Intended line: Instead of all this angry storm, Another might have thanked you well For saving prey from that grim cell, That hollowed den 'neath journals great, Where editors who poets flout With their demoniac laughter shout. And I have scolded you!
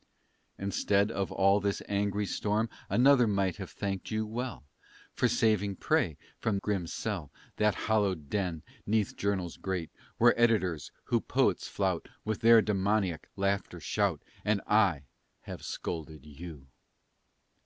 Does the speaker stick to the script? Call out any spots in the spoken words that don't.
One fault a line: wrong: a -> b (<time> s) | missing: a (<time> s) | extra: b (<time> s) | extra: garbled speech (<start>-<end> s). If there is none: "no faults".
missing: that (6.6 s)